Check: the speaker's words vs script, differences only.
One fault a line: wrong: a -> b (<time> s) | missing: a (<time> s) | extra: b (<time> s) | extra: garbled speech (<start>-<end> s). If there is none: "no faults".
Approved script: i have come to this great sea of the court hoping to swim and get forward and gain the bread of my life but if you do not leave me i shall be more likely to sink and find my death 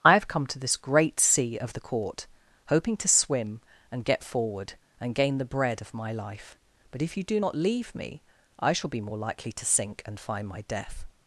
no faults